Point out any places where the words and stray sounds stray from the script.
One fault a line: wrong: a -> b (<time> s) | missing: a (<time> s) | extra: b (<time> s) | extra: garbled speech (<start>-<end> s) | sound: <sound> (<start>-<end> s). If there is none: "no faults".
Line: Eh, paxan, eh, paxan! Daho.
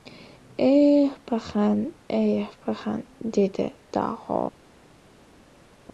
extra: dedi (3.3 s)